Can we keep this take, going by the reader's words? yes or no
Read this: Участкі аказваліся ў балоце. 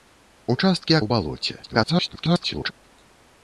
no